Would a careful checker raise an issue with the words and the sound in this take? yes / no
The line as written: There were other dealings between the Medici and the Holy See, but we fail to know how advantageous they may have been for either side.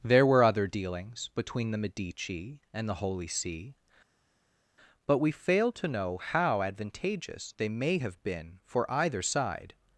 no